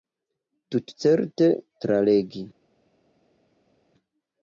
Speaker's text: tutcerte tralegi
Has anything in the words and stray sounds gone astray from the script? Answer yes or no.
no